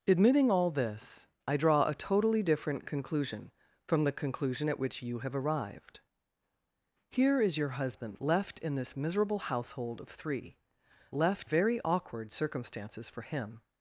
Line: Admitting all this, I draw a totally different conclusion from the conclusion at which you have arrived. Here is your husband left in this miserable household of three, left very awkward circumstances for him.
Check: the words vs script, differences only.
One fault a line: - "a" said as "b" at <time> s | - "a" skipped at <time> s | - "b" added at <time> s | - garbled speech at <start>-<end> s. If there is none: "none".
none